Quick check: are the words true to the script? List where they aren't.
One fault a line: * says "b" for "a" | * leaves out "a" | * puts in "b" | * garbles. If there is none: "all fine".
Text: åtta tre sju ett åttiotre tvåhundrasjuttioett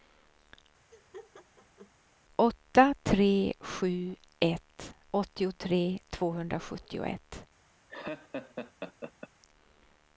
all fine